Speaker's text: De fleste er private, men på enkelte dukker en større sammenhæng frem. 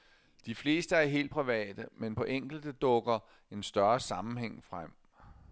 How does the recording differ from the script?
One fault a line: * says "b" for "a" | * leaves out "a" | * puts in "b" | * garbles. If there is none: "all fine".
* puts in "helt"